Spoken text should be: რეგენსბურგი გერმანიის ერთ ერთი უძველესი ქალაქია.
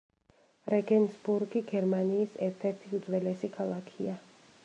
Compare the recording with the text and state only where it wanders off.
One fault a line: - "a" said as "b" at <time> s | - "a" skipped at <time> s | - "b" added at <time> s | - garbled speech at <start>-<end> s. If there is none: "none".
none